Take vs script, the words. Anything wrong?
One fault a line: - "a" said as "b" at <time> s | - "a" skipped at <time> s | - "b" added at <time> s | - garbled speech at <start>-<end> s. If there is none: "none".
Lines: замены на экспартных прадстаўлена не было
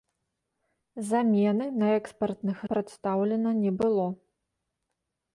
none